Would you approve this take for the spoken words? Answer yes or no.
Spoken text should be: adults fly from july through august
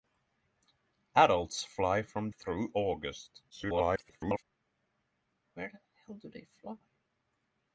no